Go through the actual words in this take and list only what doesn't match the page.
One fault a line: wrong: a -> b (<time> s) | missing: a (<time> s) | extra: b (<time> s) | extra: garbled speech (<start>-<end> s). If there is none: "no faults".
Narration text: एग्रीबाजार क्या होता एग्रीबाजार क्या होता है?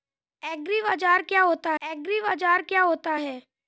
no faults